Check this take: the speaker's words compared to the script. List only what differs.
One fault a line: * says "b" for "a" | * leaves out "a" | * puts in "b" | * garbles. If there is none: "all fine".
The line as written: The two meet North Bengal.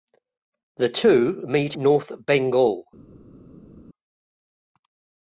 all fine